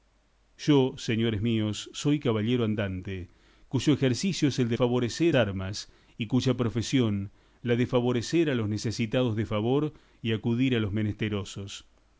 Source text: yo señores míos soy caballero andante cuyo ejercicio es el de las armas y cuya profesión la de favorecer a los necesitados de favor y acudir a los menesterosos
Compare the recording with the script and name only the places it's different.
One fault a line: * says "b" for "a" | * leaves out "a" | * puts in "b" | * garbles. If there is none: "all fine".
* says "favorecer" for "las"